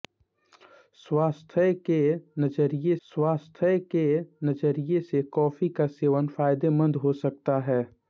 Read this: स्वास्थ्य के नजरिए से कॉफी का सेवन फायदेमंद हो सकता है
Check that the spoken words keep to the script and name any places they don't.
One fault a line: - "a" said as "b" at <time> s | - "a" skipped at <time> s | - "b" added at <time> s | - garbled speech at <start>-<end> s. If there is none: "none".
- "स्वास्थ्य के नजरिए" added at 3.1 s